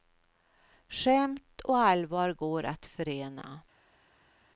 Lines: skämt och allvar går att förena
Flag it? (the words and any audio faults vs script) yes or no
no